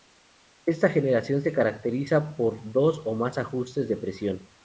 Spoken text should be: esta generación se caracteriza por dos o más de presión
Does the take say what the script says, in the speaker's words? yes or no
no